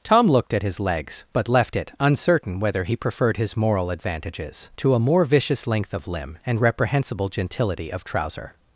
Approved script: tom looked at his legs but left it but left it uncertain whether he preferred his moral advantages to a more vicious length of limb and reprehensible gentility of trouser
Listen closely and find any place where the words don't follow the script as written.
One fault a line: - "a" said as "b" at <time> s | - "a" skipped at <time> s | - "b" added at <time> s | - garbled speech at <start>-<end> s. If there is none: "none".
- "but left it" skipped at 1.9 s